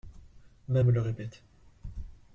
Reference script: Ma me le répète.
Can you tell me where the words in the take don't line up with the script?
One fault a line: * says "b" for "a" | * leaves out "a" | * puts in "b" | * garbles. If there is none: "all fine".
all fine